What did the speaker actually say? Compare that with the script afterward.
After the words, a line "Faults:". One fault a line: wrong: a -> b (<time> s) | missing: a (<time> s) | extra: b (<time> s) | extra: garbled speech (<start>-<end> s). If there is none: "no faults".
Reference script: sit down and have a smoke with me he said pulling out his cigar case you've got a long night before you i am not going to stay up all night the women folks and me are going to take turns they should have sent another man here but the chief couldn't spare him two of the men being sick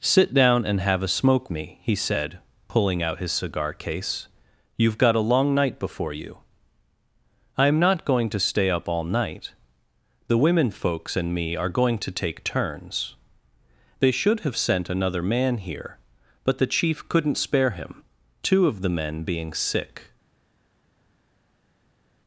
sit down and have a smoke me he said pulling out his cigar case you've got a long night before you i am not going to stay up all night the women folks and me are going to take turns they should have sent another man here but the chief couldn't spare him two of the men being sick
Faults:
missing: with (1.5 s)